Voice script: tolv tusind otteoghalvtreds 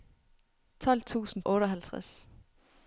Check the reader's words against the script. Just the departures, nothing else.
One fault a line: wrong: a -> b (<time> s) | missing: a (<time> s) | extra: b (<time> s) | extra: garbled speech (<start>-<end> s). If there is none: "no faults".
no faults